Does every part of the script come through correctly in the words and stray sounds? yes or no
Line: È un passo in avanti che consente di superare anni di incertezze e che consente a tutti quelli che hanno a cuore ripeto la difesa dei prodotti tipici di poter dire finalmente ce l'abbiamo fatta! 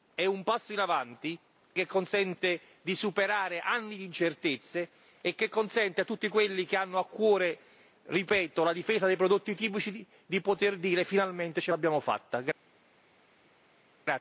yes